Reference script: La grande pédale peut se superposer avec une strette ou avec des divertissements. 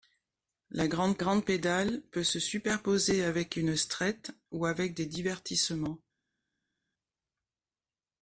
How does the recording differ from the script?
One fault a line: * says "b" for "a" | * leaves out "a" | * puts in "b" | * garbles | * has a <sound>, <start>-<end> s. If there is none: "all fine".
* puts in "grande"